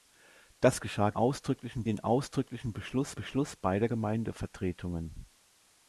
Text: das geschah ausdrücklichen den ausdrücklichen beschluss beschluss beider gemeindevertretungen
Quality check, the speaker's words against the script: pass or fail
pass